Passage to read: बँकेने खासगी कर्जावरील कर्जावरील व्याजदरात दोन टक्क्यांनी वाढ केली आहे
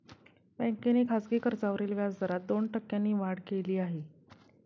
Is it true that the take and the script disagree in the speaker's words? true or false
true